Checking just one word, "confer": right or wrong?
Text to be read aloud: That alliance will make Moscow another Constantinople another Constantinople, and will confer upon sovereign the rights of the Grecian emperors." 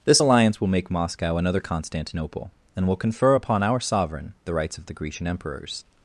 right